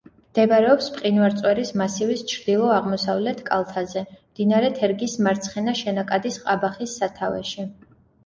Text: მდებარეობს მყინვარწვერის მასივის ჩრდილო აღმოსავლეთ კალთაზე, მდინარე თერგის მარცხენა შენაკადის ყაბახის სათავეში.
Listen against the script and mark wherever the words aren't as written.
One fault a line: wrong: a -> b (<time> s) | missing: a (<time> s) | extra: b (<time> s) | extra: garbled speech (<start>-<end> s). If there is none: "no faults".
no faults